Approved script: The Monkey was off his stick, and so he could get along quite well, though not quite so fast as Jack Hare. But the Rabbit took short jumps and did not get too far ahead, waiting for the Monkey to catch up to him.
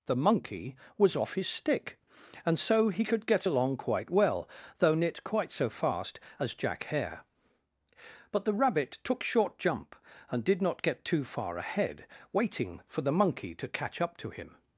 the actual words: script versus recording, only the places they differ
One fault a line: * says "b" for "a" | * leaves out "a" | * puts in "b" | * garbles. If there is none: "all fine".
* says "jump" for "jumps"